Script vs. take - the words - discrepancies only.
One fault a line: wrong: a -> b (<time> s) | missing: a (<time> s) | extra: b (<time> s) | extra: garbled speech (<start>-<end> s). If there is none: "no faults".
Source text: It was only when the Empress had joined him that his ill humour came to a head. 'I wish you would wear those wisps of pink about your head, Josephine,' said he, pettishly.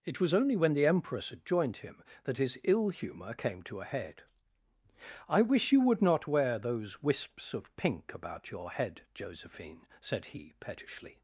extra: not (6.0 s)